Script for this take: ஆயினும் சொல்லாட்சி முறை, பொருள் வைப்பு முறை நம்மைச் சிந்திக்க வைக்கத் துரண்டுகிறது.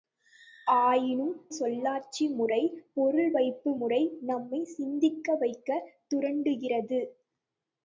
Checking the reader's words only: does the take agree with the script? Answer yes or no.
yes